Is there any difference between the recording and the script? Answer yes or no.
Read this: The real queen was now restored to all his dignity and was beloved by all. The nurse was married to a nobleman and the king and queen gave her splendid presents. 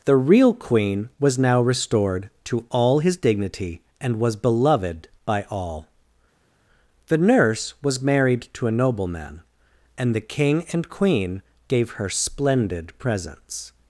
no